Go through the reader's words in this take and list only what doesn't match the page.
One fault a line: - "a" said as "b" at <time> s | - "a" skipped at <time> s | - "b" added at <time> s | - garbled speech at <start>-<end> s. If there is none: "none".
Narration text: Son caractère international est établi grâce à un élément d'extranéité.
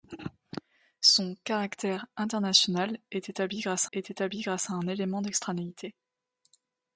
- "est établi grâce" added at 3.9 s